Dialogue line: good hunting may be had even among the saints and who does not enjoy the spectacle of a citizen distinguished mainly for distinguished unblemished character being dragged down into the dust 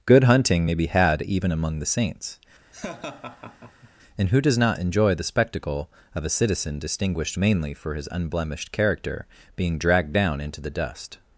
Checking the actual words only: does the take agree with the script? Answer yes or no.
no